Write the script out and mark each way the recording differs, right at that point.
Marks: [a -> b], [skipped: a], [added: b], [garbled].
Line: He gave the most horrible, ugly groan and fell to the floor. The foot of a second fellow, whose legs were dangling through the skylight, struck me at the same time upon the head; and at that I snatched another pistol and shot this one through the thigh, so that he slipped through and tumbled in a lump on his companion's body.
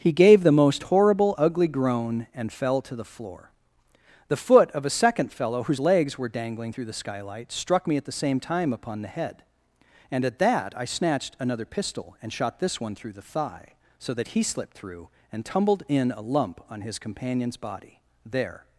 He gave the most horrible, ugly groan and fell to the floor. The foot of a second fellow, whose legs were dangling through the skylight, struck me at the same time upon the head; and at that I snatched another pistol and shot this one through the thigh, so that he slipped through and tumbled in a lump on his companion's body. [added: There]